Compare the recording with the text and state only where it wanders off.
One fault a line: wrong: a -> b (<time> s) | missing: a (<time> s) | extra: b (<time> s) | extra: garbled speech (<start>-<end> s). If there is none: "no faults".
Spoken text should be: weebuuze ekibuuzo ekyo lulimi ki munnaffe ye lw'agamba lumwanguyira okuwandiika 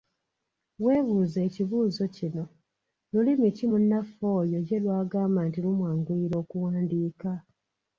wrong: ekyo -> kino (2.1 s)
extra: oyo (4.4 s)
extra: nti (5.5 s)